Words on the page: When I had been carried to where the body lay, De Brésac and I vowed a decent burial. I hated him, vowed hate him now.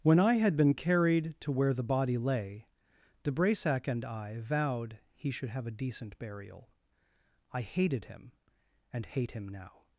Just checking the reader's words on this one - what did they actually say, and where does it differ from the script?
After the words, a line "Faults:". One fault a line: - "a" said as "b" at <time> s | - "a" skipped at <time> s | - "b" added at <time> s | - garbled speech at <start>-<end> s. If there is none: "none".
When I had been carried to where the body lay, De Brésac and I vowed he should have a decent burial. I hated him, and hate him now.
Faults:
- "he should have" added at 5.1 s
- "vowed" said as "and" at 8.9 s